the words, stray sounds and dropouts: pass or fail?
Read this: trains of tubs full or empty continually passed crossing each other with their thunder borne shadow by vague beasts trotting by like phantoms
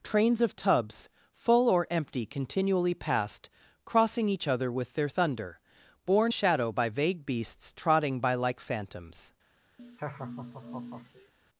fail